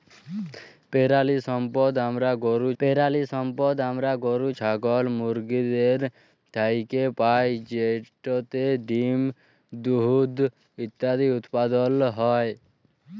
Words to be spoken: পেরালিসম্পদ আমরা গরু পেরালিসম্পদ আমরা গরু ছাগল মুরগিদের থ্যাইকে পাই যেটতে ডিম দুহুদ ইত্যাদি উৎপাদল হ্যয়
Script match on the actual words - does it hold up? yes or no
yes